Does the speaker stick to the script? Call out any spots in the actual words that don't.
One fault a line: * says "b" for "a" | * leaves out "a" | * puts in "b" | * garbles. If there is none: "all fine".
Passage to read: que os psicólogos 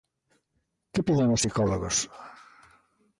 * puts in "piden"